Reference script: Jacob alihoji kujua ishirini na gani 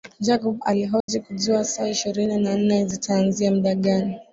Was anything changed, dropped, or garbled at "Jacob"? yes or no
no